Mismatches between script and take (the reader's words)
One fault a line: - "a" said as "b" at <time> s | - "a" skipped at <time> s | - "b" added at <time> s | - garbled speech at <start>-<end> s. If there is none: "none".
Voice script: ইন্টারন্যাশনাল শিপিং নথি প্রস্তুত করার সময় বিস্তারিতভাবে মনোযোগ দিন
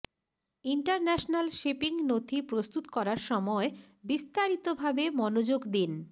none